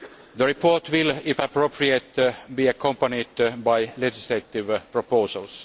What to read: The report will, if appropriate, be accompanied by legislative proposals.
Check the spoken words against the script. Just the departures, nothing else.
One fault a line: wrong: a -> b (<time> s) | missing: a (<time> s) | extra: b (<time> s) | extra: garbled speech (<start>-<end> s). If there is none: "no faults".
no faults